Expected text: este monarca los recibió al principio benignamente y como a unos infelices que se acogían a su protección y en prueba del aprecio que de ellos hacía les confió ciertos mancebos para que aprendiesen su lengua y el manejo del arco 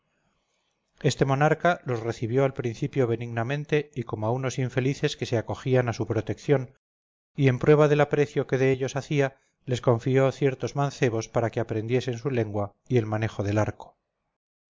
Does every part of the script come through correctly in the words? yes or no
yes